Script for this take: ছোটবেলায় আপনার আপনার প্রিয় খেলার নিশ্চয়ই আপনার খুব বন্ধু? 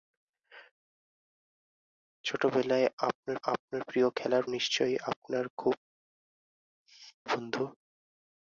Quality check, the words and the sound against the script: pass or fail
pass